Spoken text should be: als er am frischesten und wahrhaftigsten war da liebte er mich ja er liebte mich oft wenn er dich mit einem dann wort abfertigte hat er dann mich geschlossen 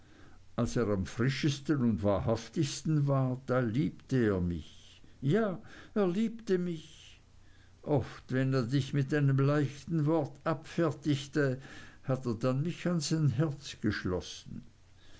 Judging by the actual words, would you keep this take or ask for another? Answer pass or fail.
fail